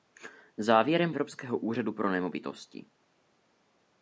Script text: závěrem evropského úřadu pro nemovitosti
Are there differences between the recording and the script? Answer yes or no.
no